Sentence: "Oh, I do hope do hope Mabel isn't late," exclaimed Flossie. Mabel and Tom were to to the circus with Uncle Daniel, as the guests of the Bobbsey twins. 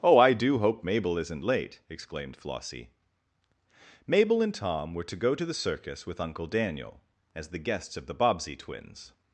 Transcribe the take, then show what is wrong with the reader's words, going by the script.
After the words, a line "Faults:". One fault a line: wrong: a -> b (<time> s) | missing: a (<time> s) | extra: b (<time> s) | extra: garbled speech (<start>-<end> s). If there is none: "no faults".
"Oh, I do hope Mabel isn't late," exclaimed Flossie. Mabel and Tom were to go to the circus with Uncle Daniel, as the guests of the Bobbsey twins.
Faults:
missing: do hope (0.8 s)
extra: go (5.2 s)